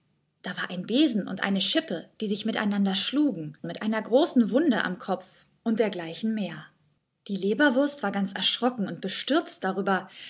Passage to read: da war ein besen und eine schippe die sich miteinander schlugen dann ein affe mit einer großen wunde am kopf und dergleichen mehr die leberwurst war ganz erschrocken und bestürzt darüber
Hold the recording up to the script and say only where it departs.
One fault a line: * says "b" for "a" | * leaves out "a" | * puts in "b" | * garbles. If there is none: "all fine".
* leaves out "dann ein affe"